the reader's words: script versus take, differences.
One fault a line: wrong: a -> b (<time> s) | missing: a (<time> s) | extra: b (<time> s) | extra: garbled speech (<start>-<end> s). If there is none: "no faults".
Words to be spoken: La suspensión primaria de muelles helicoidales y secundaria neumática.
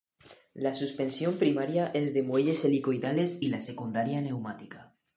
extra: es (1.9 s)
extra: la (3.5 s)